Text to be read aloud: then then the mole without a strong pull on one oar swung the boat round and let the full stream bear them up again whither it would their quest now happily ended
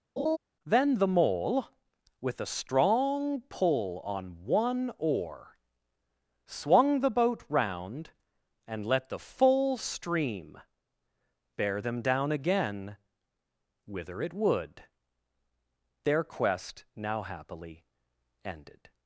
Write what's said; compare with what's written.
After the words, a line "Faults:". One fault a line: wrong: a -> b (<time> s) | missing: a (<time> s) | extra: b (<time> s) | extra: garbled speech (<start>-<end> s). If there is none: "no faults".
then the mole with a strong pull on one oar swung the boat round and let the full stream bear them down again whither it would their quest now happily ended
Faults:
missing: then (0.9 s)
wrong: without -> with (2.2 s)
wrong: up -> down (12.0 s)